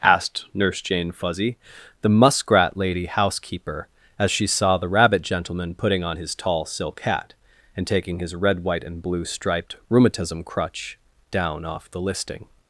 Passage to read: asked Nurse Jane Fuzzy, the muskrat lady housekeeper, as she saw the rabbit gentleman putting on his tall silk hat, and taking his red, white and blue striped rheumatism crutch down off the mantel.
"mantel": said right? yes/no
no